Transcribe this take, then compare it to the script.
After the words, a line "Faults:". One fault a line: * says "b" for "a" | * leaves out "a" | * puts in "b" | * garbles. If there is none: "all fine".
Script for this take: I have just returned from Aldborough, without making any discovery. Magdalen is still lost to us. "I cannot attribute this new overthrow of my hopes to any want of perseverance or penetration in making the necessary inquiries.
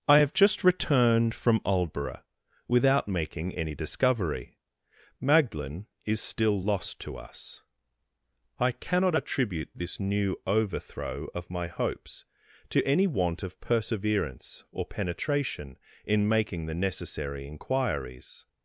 I have just returned from Aldborough, without making any discovery. Magdalen is still lost to us. "I cannot attribute this new overthrow of my hopes to any want of perseverance or penetration in making the necessary inquiries.
Faults:
all fine